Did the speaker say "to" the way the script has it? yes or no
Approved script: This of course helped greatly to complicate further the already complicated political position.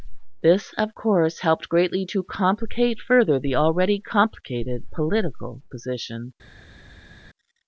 yes